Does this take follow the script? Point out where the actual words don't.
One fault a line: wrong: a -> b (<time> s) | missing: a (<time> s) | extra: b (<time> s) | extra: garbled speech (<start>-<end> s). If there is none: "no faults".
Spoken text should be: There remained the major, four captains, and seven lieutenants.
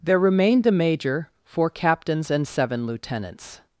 wrong: the -> a (0.7 s)